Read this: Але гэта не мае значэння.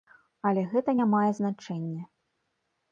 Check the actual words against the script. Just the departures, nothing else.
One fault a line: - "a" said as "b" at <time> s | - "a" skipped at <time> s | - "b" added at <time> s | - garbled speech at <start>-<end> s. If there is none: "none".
none